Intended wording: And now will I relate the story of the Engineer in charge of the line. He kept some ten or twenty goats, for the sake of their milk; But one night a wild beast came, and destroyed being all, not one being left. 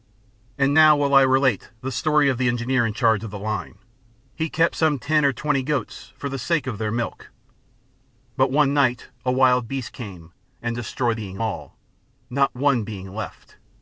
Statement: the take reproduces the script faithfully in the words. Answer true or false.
true